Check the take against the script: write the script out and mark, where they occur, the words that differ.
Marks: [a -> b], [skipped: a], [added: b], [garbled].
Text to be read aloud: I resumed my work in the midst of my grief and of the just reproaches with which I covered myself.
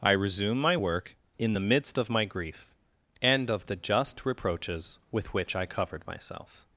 I [resumed -> resume] my work in the midst of my grief and of the just reproaches with which I covered myself.